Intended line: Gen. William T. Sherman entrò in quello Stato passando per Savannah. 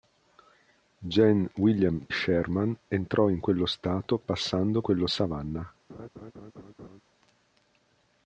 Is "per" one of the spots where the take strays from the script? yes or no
yes